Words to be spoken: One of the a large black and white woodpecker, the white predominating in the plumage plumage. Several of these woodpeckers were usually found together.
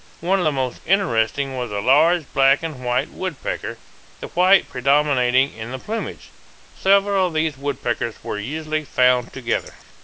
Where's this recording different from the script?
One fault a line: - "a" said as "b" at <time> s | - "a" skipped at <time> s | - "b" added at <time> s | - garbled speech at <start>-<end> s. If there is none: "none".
- "most interesting was" added at 0.5 s
- "plumage" skipped at 6.3 s